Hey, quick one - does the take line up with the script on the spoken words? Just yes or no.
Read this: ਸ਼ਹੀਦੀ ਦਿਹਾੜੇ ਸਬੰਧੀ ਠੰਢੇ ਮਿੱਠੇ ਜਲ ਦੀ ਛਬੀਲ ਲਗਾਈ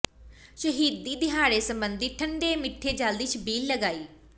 yes